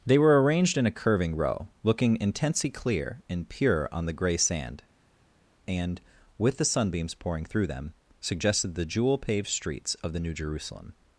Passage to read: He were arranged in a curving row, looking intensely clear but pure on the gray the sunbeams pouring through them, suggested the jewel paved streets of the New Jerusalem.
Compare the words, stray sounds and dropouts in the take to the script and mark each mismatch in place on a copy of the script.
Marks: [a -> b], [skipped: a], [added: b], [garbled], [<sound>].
[He -> They] were arranged in a curving row, looking intensely clear [but -> and] pure on the gray [added: sand and with] the sunbeams pouring through them, suggested the jewel paved streets of the New Jerusalem.